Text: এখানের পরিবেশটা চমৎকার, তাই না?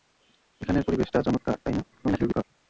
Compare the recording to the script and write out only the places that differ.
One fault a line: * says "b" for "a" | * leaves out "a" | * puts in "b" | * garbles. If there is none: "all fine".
* garbles